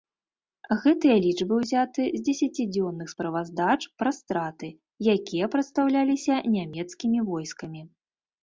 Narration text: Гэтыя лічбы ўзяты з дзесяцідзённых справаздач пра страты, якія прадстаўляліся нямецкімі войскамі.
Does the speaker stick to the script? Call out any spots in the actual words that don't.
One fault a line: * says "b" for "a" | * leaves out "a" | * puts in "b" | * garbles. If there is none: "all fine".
all fine